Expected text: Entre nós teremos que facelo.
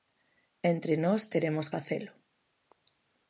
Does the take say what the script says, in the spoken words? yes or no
no